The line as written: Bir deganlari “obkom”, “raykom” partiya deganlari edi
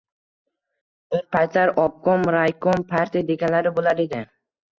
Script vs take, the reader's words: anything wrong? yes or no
yes